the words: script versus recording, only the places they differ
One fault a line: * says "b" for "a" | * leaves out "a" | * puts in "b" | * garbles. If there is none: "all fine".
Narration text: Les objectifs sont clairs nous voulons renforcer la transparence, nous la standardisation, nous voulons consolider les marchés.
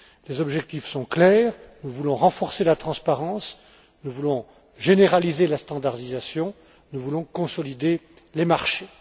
* puts in "voulons généraliser"